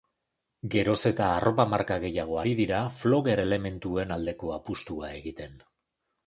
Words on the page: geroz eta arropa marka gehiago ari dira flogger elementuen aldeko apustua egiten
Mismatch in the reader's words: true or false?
false